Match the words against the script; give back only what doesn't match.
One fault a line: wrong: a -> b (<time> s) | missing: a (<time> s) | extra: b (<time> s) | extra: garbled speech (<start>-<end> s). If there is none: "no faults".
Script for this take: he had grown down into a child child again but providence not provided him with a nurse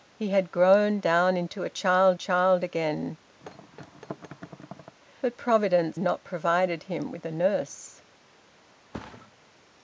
no faults